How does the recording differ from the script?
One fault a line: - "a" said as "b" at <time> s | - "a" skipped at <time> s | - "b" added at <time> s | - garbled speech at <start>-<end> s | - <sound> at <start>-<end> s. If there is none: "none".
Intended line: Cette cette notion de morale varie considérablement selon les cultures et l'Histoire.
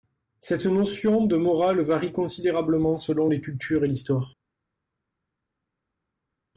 - "cette" skipped at 0.7 s